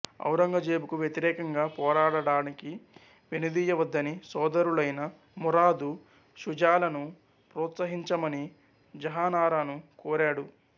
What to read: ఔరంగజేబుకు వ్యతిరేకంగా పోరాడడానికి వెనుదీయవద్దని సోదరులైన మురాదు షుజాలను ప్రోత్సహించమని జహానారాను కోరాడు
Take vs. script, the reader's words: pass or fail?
pass